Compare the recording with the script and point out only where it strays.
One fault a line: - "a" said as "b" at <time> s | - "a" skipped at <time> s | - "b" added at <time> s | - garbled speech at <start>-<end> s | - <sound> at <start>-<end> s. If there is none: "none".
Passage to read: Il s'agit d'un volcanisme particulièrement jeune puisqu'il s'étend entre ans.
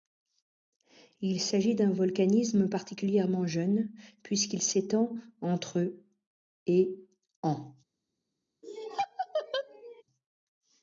- "et" added at 6.7 s
- laugh at 8.6-10.0 s